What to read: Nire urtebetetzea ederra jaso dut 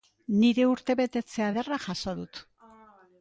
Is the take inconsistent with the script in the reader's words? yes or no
no